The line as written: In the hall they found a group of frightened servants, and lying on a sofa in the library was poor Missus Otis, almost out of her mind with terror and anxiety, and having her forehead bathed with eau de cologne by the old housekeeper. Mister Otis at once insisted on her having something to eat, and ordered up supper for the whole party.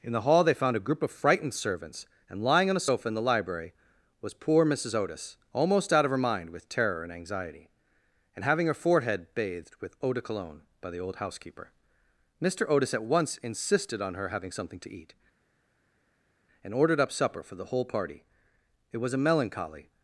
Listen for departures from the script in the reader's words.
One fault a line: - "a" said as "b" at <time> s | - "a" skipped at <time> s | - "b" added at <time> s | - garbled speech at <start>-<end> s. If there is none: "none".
- "It was a melancholy" added at 18.9 s